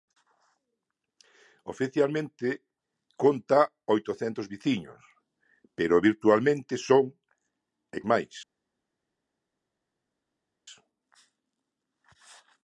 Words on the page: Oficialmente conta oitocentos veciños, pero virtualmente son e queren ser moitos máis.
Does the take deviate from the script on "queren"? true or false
true